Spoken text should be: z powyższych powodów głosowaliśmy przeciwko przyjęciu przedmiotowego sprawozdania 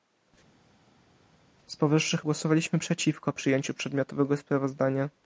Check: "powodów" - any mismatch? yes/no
yes